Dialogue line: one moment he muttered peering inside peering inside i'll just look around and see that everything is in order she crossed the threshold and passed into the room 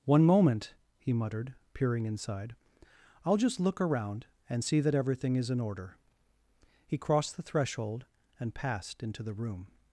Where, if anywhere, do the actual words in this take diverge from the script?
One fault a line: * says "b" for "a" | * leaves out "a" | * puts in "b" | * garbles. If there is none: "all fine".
* leaves out "peering inside"
* says "he" for "she"